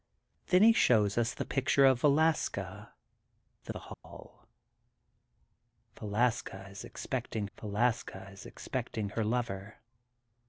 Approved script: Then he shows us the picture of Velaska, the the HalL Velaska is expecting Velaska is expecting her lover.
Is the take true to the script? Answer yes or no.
yes